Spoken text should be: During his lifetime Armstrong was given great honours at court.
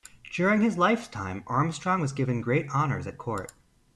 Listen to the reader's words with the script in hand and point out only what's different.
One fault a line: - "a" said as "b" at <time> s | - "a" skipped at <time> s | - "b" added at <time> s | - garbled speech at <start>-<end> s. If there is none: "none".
none